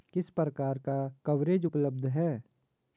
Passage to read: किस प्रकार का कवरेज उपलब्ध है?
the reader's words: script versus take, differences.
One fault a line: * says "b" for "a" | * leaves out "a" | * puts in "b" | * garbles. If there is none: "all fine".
all fine